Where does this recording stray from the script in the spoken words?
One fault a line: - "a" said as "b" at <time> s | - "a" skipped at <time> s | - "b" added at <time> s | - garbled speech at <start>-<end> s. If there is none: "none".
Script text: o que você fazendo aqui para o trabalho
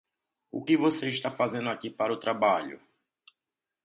- "está" added at 1.1 s